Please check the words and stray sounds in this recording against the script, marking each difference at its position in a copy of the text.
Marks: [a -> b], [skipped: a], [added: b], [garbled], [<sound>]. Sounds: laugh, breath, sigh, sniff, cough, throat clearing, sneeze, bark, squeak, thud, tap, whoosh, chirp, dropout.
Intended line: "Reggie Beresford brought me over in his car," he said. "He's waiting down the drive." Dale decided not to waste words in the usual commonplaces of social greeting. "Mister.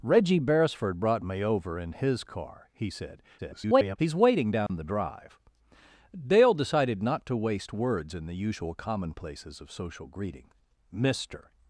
"Reggie Beresford brought me over in his car," he said. [garbled] "He's waiting down [dropout] the drive." Dale decided not to waste words in the usual commonplaces of social greeting. "Mister.